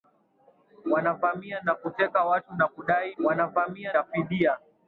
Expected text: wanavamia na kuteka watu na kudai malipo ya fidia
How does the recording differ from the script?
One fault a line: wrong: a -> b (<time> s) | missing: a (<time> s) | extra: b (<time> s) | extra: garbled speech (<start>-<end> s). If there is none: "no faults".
wrong: malipo -> wanavamia (3.2 s)